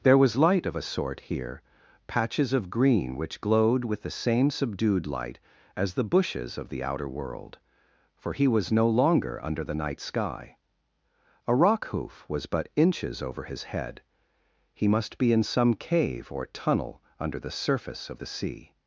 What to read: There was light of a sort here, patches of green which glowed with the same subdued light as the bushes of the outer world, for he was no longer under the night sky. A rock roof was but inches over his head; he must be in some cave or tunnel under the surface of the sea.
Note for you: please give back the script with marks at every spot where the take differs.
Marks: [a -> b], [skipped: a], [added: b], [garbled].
There was light of a sort here, patches of green which glowed with the same subdued light as the bushes of the outer world, for he was no longer under the night sky. A rock [roof -> hoof] was but inches over his head; he must be in some cave or tunnel under the surface of the sea.